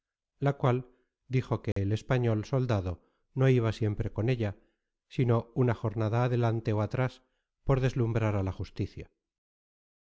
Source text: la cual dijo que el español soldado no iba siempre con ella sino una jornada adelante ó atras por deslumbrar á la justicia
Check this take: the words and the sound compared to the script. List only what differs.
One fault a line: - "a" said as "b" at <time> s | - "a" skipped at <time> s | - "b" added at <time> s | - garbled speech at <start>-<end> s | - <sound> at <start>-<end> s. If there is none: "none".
- dropout at 1.7-1.8 s